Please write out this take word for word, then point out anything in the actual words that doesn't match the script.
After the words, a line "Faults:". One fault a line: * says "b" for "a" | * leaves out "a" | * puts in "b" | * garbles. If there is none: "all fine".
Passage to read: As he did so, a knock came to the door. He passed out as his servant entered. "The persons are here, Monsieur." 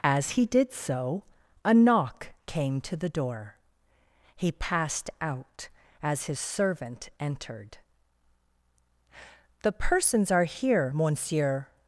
As he did so, a knock came to the door. He passed out as his servant entered. "The persons are here, Monsieur."
Faults:
all fine